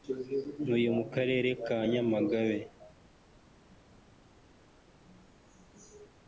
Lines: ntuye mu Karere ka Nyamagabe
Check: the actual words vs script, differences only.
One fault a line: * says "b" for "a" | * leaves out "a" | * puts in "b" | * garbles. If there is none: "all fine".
all fine